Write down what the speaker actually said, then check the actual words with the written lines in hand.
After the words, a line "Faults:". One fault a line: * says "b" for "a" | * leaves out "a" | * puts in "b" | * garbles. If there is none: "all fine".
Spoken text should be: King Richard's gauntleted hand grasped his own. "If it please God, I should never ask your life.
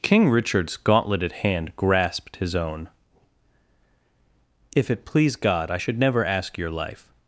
King Richard's gauntleted hand grasped his own. "If it please God, I should never ask your life.
Faults:
all fine